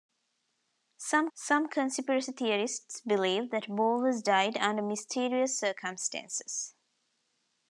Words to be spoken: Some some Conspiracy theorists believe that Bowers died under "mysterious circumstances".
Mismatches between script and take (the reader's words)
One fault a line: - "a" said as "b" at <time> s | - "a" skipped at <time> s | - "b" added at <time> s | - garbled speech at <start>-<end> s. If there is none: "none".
none